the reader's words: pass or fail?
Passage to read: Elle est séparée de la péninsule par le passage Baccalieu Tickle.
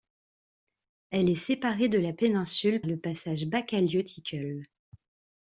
fail